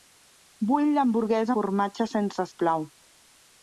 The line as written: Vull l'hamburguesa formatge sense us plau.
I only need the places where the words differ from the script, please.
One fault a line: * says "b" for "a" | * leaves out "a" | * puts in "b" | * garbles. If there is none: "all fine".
all fine